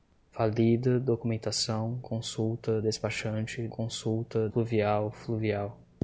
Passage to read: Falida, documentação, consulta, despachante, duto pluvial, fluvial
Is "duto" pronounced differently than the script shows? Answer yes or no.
yes